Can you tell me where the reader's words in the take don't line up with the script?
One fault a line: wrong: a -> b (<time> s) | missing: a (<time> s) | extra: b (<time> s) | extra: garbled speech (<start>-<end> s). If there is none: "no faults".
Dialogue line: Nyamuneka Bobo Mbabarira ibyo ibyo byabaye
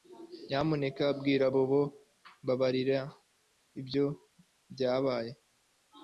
extra: bwira (1.2 s)
missing: ibyo (4.0 s)